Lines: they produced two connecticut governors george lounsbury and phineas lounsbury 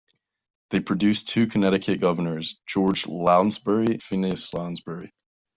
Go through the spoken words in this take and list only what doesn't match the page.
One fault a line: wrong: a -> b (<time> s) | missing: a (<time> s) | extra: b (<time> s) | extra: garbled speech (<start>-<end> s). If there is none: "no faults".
missing: and (4.0 s)